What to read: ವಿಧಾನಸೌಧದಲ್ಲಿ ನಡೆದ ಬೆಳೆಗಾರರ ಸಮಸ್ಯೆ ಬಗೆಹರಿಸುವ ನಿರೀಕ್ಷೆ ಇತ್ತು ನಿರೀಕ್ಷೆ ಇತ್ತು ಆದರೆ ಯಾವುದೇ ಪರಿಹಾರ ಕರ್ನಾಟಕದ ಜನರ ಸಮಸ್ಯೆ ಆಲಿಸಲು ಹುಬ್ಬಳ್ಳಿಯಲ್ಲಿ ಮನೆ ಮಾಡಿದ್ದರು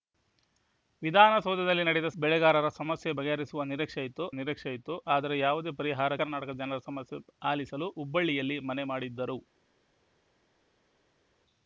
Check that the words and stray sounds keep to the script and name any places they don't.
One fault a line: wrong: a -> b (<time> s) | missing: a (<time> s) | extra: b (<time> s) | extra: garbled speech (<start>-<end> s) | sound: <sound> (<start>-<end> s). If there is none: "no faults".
no faults